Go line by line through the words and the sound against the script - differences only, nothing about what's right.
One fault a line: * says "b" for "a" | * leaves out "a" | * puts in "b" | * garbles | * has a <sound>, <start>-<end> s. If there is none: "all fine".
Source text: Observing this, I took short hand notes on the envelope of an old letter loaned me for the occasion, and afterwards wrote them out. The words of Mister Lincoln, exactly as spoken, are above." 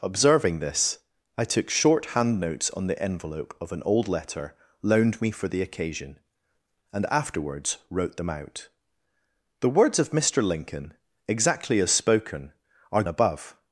all fine